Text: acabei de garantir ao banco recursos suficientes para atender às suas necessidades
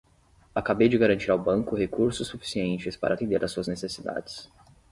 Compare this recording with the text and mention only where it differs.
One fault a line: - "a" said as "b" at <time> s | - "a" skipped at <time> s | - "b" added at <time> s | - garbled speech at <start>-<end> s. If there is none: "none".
none